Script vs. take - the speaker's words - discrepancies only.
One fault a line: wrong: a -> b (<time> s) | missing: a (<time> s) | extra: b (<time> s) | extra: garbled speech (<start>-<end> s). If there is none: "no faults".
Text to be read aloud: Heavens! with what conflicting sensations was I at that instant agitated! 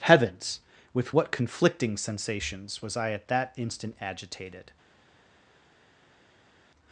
no faults